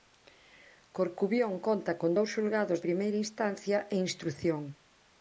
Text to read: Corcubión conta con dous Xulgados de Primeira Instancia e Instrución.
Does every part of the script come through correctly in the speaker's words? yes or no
no